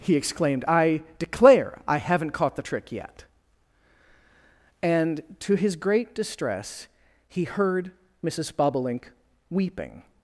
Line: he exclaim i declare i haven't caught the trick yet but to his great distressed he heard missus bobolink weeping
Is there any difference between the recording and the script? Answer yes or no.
yes